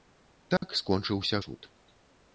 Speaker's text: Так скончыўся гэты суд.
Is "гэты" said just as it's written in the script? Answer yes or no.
no